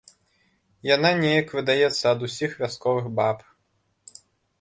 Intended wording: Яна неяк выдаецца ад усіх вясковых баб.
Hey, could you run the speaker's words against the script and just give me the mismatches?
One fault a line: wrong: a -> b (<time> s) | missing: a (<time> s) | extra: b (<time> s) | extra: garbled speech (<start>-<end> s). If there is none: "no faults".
no faults